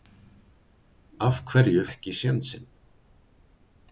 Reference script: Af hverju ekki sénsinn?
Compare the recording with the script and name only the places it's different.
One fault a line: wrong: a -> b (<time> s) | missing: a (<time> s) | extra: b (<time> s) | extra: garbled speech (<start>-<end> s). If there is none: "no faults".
no faults